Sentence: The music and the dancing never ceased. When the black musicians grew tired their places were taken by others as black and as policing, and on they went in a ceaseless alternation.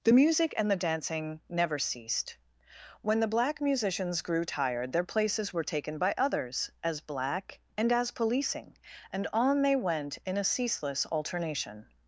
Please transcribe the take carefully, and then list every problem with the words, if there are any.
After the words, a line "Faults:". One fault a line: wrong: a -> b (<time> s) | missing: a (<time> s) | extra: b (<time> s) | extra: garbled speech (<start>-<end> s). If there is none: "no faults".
The music and the dancing never ceased. When the black musicians grew tired their places were taken by others as black and as policing, and on they went in a ceaseless alternation.
Faults:
no faults